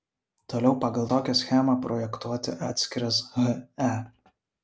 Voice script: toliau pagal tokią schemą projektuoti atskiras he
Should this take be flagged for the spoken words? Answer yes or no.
no